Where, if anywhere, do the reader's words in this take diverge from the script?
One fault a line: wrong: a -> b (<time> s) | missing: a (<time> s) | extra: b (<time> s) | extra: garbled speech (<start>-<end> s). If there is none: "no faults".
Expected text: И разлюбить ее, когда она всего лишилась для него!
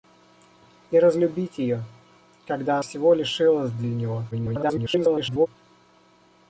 missing: она (2.8 s)
extra: garbled speech (4.3-5.5 s)